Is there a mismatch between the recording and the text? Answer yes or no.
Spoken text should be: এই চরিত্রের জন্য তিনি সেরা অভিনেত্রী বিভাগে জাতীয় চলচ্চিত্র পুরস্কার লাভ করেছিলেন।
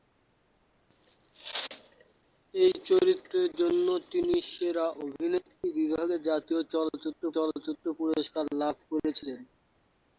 yes